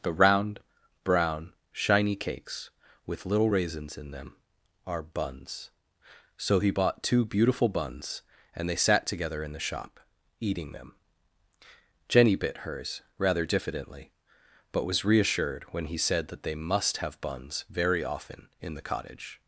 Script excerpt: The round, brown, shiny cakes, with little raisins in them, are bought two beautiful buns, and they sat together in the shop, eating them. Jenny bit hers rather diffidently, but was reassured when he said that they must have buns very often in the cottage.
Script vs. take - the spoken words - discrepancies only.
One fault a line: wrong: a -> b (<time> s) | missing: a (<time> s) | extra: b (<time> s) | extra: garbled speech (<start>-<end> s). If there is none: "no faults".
extra: buns So he (5.0 s)